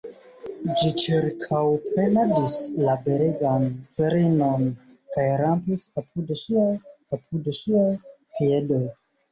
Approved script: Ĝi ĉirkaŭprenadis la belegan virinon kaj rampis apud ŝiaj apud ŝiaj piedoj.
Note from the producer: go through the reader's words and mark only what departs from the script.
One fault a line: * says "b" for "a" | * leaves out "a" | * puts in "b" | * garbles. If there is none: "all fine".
all fine